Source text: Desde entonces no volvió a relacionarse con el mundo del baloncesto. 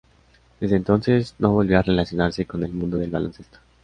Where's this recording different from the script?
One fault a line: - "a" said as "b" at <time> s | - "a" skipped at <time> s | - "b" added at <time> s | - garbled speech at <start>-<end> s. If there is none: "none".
none